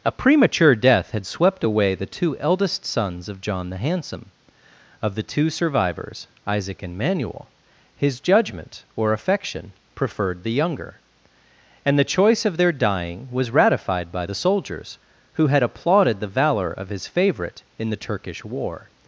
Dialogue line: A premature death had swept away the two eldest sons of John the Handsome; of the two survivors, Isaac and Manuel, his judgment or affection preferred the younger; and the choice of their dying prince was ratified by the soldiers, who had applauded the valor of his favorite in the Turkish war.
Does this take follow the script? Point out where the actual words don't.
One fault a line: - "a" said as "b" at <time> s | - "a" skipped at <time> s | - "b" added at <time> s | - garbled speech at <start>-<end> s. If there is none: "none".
- "prince" skipped at 13.3 s